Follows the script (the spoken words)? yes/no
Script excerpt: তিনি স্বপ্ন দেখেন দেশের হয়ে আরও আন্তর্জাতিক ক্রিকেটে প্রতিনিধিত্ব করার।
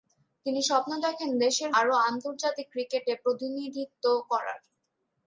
no